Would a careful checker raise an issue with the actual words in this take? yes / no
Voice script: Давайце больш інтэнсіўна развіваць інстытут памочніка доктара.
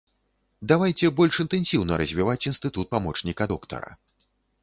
no